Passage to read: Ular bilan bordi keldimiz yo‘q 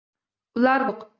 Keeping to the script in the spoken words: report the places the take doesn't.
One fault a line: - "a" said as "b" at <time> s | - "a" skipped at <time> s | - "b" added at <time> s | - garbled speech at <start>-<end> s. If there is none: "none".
- "bilan bordi keldimiz" skipped at 0.8 s